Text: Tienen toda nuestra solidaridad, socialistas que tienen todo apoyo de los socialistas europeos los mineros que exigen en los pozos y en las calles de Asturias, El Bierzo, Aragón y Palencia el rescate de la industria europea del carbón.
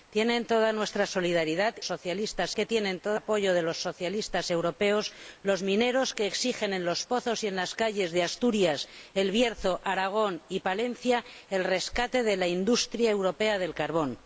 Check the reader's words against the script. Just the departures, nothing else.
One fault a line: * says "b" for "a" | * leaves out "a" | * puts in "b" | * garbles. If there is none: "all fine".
all fine